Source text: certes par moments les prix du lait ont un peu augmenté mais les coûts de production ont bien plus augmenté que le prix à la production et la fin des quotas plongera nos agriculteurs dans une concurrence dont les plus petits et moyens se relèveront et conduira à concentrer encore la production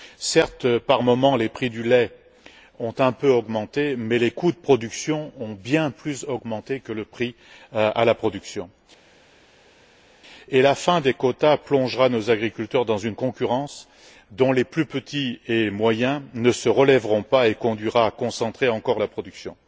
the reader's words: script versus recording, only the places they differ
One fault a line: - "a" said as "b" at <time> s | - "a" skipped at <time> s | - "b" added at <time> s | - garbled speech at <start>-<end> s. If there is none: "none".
- "ne" added at 16.3 s
- "pas" added at 17.2 s